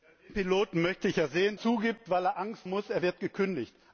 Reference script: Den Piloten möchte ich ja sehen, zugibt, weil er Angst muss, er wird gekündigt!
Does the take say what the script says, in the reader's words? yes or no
yes